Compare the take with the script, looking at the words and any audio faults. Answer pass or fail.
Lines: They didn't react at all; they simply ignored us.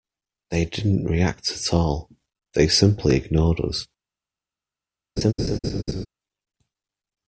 fail